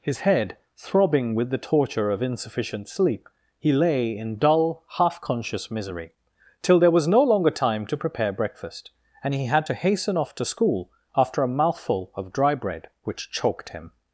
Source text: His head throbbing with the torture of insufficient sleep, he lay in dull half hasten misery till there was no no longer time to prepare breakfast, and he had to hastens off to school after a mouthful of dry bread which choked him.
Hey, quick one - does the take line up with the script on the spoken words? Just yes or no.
no